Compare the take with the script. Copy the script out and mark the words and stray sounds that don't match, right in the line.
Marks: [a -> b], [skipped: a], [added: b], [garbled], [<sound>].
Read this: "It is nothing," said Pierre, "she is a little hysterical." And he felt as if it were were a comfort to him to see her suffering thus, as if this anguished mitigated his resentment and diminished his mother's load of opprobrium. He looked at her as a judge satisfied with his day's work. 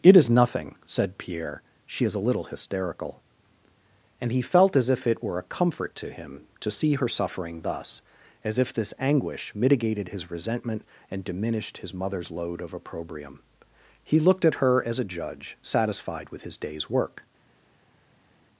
"It is nothing," said Pierre, "she is a little hysterical." And he felt as if it were [skipped: were] a comfort to him to see her suffering thus, as if this [anguished -> anguish] mitigated his resentment and diminished his mother's load of opprobrium. He looked at her as a judge satisfied with his day's work.